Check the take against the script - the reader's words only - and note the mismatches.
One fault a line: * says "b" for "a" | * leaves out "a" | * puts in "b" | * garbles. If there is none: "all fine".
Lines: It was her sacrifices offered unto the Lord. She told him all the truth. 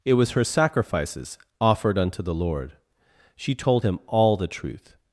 all fine